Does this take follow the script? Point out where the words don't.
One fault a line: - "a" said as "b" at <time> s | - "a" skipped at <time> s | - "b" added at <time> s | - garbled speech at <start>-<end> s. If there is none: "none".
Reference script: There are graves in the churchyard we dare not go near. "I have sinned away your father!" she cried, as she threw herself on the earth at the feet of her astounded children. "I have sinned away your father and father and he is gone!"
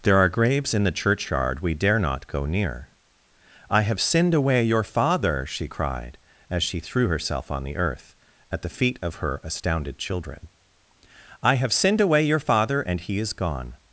- "father and" skipped at 13.0 s